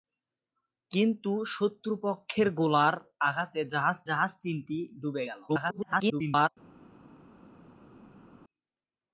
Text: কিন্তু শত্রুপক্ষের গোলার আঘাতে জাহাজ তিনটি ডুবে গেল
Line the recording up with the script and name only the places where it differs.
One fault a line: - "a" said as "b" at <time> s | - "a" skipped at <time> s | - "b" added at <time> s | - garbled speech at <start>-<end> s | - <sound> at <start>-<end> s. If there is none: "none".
- "জাহাজ" added at 4.1 s
- garbled speech at 5.5-6.5 s